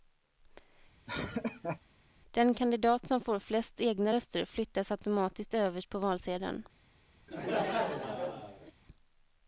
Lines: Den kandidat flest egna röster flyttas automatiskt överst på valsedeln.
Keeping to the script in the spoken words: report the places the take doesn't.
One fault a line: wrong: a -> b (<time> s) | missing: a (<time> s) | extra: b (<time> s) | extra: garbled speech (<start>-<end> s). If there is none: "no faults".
extra: som får (3.1 s)